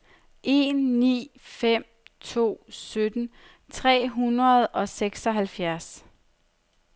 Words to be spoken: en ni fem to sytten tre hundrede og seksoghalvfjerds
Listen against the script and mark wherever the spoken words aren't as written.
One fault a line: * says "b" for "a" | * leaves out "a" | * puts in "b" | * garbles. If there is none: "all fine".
all fine